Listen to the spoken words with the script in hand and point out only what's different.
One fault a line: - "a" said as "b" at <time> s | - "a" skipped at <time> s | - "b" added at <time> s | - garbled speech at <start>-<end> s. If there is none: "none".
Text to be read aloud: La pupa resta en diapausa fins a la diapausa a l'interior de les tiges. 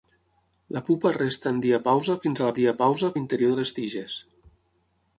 none